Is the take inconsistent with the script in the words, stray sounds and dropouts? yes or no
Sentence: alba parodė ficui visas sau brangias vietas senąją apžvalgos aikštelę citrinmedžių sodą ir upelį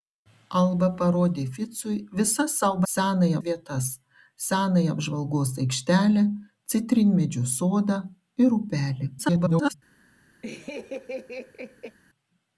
yes